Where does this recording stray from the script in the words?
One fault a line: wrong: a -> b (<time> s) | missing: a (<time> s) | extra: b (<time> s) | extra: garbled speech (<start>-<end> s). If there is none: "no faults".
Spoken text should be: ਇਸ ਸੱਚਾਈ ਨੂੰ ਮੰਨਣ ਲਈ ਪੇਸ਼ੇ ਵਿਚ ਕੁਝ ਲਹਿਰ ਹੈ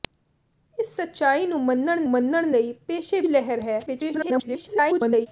extra: ਮੰਨਣ (2.1 s)
missing: ਵਿਚ ਕੁਝ (3.2 s)
extra: garbled speech (3.9-5.3 s)